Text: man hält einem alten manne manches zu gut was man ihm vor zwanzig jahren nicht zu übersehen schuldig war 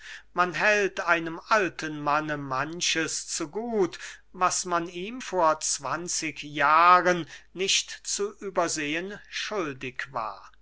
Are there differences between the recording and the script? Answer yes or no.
no